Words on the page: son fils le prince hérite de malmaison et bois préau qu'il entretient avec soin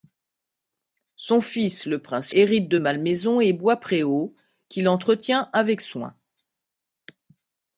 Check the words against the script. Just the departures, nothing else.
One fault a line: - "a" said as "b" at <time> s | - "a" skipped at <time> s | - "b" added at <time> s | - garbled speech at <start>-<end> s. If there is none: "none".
none